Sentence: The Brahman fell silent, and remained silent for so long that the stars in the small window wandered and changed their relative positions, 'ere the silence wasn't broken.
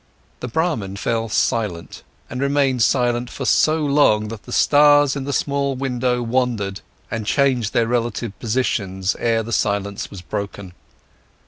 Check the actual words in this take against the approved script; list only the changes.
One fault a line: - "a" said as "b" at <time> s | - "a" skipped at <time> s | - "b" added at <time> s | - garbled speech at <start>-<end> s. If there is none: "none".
- "wasn't" said as "was" at 10.1 s